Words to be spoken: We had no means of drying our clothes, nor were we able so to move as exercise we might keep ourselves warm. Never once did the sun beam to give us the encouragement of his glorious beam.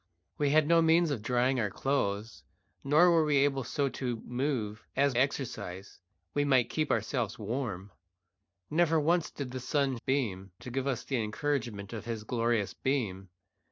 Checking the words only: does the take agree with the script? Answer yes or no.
yes